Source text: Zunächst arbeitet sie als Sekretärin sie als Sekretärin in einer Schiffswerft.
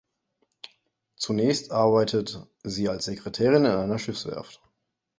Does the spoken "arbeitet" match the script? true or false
true